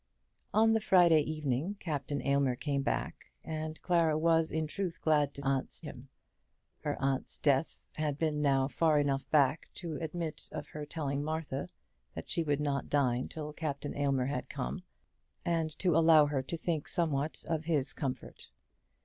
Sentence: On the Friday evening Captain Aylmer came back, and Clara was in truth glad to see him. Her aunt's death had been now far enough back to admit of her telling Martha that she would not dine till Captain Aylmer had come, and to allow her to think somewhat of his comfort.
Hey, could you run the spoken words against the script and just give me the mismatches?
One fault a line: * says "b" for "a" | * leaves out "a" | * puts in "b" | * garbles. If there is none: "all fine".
* says "aunt's" for "see"